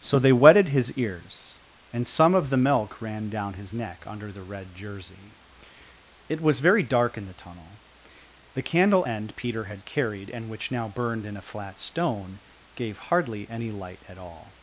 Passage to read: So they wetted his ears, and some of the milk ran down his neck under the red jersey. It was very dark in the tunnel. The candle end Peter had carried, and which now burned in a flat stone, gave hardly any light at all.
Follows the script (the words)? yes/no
yes